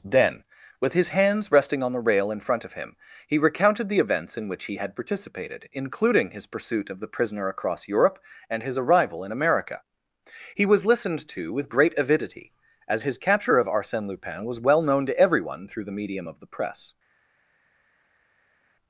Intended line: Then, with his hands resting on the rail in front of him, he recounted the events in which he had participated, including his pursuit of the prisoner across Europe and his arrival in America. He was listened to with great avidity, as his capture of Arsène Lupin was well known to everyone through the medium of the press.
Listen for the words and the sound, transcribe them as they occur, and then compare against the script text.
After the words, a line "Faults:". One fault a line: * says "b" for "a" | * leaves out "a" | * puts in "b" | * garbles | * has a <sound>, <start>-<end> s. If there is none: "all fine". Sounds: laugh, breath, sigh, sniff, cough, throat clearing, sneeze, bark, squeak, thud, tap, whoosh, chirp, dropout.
Then, with his hands resting on the rail in front of him, he recounted the events in which he had participated, including his pursuit of the prisoner across Europe and his arrival in America. He was listened to with great avidity, as his capture of Arsène Lupin was well known to everyone through the medium of the press.
Faults:
all fine